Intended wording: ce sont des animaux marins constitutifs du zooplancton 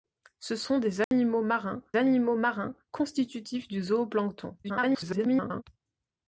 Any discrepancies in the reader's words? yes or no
yes